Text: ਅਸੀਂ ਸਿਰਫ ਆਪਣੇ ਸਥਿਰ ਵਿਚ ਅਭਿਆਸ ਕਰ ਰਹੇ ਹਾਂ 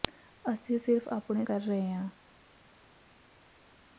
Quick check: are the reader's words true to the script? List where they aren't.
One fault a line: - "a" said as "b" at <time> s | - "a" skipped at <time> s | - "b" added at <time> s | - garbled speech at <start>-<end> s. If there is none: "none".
- "ਸਥਿਰ ਵਿਚ ਅਭਿਆਸ" skipped at 1.4 s